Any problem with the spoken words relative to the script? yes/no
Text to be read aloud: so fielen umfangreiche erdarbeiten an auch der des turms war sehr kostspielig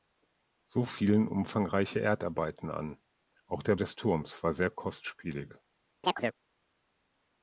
no